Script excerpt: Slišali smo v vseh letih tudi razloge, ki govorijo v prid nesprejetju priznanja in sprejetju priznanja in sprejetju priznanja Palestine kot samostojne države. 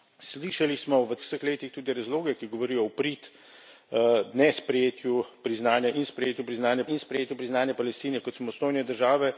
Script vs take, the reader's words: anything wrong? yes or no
no